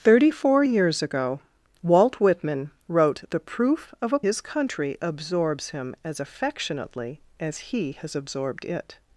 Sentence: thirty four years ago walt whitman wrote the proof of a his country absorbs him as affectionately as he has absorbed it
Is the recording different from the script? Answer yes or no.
no